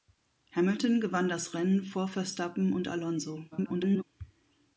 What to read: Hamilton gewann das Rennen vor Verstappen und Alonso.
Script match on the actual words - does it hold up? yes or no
no